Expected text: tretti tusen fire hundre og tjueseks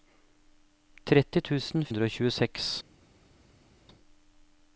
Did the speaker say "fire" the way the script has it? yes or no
no